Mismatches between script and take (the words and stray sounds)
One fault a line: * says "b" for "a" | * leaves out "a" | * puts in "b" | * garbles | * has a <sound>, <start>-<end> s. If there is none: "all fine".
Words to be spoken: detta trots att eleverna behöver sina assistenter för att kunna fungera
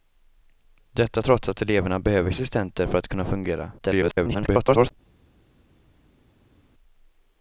* leaves out "sina"
* garbles